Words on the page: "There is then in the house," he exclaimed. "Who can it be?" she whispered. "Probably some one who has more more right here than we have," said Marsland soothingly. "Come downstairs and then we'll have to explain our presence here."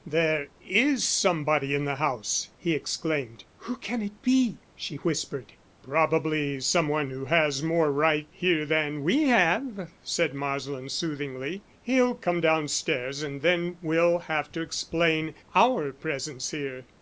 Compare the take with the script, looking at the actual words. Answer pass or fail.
fail